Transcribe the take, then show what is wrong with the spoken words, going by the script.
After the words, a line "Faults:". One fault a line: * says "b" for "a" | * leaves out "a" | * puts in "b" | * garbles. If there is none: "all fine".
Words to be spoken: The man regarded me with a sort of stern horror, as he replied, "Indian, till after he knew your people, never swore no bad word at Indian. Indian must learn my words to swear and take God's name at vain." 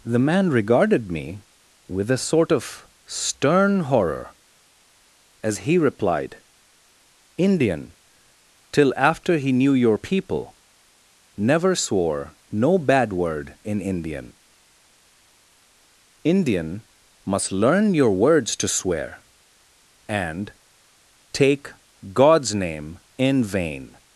The man regarded me with a sort of stern horror, as he replied, "Indian, till after he knew your people, never swore no bad word in Indian. Indian must learn your words to swear and take God's name in vain."
Faults:
* says "in" for "at"
* says "your" for "my"
* says "in" for "at"